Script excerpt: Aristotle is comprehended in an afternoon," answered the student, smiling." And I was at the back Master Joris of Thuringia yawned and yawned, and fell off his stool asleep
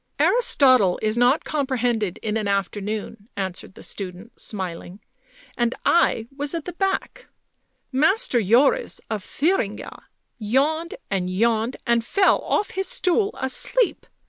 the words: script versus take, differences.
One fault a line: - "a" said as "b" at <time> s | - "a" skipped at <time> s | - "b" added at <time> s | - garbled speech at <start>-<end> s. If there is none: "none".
- "not" added at 1.2 s